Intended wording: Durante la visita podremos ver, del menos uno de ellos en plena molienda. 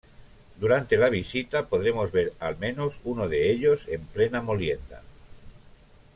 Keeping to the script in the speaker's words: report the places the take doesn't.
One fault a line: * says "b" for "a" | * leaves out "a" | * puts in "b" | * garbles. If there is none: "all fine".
* says "al" for "del"